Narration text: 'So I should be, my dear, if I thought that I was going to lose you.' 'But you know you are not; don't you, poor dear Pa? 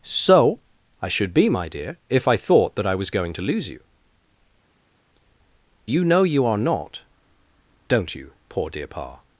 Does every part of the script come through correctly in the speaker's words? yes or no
no